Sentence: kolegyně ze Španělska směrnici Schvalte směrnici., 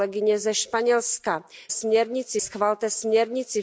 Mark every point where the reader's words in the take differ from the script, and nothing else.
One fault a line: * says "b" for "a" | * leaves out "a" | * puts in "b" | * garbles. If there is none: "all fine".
all fine